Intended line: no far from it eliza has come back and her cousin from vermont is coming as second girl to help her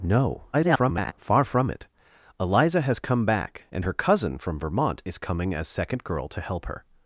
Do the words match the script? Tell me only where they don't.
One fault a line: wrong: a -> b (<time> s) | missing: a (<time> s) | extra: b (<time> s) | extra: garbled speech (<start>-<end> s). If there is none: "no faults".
extra: garbled speech (0.5-1.1 s)